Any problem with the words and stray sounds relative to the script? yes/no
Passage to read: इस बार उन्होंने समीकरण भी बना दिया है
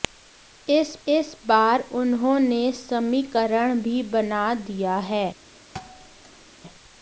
yes